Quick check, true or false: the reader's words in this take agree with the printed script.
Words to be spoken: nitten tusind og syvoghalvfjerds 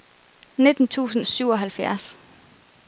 true